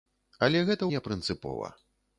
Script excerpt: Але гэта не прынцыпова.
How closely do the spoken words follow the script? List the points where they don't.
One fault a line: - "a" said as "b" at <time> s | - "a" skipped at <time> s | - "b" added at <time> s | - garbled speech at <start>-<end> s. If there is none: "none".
none